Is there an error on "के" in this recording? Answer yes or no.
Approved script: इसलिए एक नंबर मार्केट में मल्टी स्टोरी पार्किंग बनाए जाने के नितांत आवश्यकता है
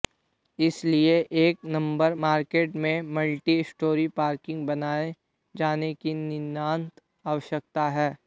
yes